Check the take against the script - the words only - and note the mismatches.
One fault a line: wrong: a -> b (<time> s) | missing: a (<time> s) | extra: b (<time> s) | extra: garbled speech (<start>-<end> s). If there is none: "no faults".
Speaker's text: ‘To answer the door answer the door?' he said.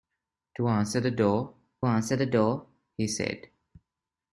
no faults